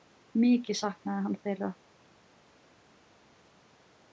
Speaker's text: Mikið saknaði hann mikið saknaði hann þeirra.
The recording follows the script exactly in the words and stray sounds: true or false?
false